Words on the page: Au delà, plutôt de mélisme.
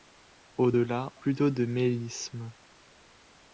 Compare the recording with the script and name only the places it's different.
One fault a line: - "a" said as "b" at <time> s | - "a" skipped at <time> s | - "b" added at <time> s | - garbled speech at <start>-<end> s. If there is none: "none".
none